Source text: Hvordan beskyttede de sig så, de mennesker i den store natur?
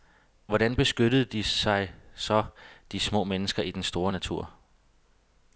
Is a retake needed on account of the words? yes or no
yes